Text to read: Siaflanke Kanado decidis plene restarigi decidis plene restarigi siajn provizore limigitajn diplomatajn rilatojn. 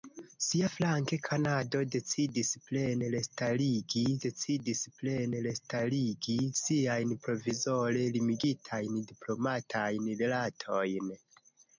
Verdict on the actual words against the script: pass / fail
pass